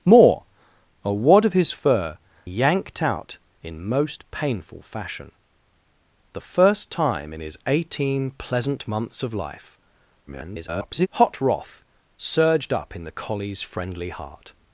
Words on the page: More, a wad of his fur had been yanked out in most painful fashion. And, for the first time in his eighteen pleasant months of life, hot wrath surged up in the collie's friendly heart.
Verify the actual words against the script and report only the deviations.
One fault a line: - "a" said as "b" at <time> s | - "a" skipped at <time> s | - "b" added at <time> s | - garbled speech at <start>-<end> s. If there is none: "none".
- "had been" skipped at 2.2 s
- "And for" skipped at 5.3 s
- garbled speech at 10.3-11.1 s